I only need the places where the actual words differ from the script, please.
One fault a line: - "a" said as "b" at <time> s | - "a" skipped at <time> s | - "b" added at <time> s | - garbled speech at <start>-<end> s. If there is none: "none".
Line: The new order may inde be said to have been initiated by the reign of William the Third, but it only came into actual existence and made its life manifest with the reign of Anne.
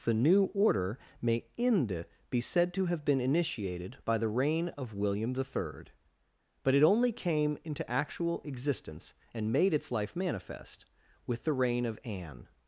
none